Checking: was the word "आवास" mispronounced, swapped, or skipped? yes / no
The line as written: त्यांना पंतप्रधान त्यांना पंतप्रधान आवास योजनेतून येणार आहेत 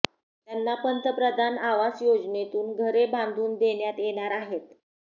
yes